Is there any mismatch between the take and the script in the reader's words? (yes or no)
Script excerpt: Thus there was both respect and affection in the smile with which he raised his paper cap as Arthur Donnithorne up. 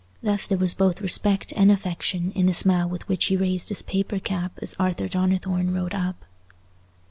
yes